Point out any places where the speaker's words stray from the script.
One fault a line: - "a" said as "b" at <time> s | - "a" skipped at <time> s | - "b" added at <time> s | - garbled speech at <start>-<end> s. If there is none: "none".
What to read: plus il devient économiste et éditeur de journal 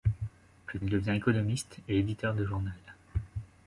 none